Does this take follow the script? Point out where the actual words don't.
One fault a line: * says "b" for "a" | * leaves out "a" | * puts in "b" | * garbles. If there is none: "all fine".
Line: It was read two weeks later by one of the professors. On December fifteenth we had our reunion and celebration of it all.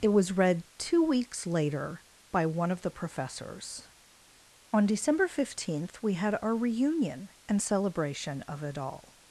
all fine